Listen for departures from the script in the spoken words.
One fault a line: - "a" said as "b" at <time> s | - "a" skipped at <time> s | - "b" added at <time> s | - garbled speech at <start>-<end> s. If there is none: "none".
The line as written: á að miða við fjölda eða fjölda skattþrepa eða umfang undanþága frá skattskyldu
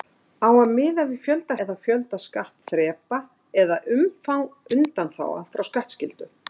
none